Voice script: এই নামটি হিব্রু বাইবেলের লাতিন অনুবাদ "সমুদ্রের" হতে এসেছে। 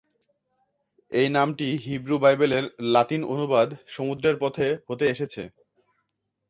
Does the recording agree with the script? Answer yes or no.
no